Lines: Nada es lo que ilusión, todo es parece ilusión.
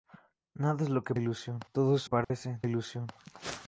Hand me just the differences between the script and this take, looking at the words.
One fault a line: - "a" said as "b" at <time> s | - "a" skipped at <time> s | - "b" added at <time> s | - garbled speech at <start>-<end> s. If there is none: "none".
none